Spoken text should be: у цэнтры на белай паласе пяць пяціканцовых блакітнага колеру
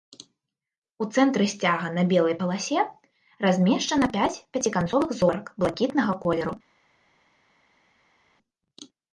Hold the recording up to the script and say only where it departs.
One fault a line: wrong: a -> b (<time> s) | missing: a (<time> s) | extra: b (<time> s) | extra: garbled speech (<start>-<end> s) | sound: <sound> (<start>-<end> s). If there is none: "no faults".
extra: сцяга (1.5 s)
extra: размешчана (3.5 s)
extra: зорак (5.2 s)